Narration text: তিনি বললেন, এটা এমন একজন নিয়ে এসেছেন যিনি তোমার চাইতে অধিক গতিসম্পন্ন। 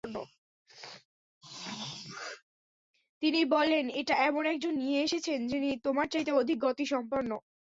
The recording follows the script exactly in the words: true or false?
true